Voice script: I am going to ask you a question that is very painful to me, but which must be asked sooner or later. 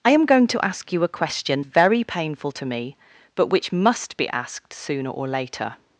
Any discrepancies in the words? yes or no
yes